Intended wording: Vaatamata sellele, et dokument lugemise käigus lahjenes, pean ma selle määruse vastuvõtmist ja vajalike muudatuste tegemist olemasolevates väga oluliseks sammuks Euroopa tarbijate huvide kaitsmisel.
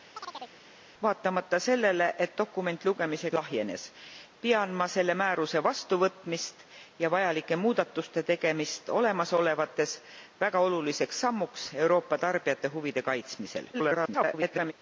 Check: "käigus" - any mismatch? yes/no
yes